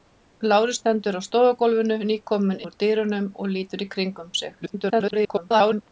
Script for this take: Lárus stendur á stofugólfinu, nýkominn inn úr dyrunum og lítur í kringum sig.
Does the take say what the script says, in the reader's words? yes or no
no